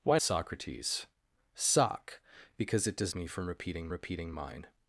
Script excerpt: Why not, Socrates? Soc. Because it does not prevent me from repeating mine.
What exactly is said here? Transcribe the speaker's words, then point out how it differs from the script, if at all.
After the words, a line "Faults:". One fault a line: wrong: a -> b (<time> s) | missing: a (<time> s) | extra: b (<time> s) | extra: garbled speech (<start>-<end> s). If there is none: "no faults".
Why Socrates? Soc. Because it does me from repeating repeating mine.
Faults:
missing: not (0.2 s)
missing: not prevent (3.1 s)
extra: repeating (3.9 s)